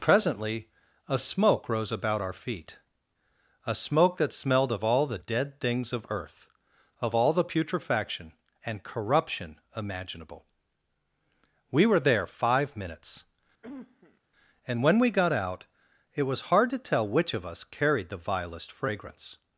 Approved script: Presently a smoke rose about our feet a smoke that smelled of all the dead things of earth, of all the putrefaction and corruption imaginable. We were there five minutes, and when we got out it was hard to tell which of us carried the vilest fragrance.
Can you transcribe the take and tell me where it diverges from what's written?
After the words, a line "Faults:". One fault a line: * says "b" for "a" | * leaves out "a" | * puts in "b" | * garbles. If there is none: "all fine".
Presently a smoke rose about our feet a smoke that smelled of all the dead things of earth, of all the putrefaction and corruption imaginable. We were there five minutes, and when we got out it was hard to tell which of us carried the vilest fragrance.
Faults:
all fine